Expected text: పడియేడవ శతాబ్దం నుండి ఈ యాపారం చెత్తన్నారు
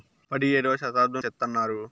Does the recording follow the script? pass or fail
fail